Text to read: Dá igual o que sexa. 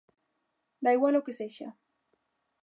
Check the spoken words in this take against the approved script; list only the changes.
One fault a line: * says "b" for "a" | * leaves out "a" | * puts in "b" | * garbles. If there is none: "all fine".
all fine